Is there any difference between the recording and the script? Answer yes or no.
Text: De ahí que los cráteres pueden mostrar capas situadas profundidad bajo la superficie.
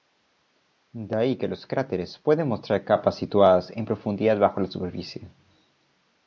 yes